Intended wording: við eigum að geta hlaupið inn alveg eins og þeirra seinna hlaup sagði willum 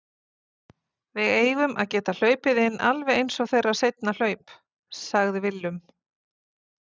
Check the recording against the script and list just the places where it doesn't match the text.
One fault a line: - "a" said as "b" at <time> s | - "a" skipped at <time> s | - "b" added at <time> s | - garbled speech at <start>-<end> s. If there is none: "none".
none